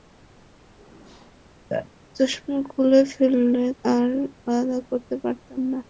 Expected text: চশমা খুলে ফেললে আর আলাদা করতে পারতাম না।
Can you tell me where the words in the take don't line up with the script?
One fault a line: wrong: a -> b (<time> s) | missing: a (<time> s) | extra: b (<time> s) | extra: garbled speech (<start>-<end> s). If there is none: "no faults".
no faults